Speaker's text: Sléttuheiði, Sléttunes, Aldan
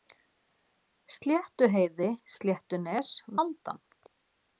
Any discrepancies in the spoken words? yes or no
no